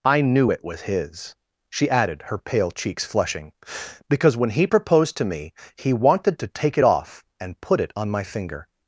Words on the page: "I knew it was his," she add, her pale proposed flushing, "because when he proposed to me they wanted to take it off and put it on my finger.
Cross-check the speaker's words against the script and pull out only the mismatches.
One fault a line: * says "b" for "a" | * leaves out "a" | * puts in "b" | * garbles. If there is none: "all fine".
* says "added" for "add"
* says "cheeks" for "proposed"
* says "he" for "they"